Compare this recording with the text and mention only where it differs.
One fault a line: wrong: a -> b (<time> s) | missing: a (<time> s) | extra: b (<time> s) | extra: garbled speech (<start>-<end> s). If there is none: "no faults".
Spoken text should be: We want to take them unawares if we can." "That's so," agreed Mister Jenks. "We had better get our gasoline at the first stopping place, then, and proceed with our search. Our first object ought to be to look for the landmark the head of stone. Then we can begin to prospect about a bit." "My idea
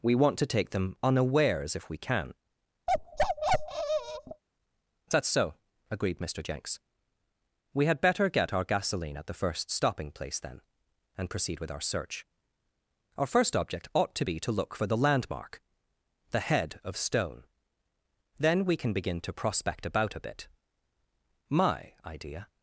no faults